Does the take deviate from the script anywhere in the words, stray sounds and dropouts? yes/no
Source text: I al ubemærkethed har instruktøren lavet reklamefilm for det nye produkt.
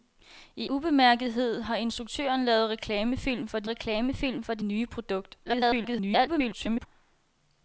yes